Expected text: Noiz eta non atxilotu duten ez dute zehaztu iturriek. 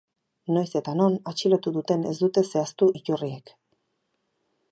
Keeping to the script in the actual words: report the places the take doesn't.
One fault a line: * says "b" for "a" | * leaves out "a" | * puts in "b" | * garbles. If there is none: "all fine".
all fine